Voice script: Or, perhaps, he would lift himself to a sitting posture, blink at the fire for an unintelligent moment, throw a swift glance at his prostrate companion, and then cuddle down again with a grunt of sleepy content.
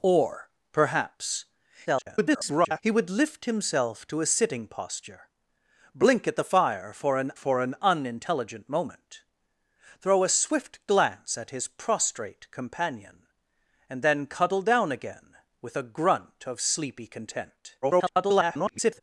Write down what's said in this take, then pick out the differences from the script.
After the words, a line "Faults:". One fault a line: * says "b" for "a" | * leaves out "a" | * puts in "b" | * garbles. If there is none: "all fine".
Or, perhaps, [garbled] he would lift himself to a sitting posture, blink at the fire for an for an unintelligent moment, throw a swift glance at his prostrate companion, and then cuddle down again with a grunt of sleepy content. [garbled]
Faults:
* garbles
* puts in "for an"
* garbles